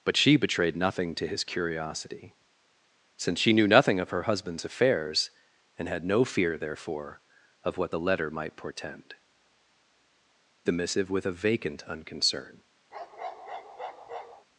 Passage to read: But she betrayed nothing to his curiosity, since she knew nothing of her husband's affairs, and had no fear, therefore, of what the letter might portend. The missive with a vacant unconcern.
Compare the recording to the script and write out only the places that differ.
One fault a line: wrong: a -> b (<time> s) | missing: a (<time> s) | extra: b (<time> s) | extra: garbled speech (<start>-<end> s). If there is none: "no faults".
no faults